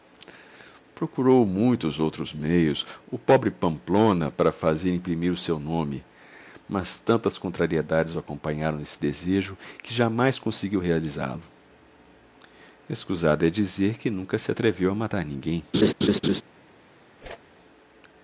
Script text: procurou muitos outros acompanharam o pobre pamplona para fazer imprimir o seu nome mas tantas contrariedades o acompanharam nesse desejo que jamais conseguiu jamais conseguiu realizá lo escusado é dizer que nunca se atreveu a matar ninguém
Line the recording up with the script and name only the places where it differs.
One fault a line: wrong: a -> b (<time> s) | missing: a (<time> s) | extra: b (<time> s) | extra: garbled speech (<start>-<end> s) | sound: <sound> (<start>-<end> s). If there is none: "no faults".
wrong: acompanharam -> meios (2.3 s)
missing: jamais conseguiu (10.8 s)
sound: laugh (15.7-16.4 s)
sound: whoosh (17.2-17.4 s)